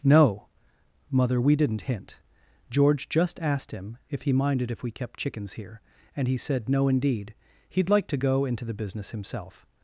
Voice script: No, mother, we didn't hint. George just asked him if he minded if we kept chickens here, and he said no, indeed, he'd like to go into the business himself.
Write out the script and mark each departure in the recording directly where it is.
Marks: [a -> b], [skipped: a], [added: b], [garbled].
No, mother, we didn't hint. George just asked him if he minded if we kept chickens here, and he said no, indeed, he'd like to go into the business himself.